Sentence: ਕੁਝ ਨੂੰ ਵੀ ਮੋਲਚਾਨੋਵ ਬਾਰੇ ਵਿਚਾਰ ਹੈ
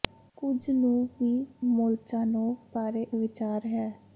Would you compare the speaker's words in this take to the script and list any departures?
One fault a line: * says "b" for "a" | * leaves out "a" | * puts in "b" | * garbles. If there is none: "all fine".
all fine